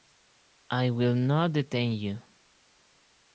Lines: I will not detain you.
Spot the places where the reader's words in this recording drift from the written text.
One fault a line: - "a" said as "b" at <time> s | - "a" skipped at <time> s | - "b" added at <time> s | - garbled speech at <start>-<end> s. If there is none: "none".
none